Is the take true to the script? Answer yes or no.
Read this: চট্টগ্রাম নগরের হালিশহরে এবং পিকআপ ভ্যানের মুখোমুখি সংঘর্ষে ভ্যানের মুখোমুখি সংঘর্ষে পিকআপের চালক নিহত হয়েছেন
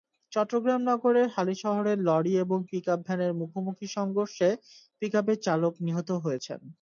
no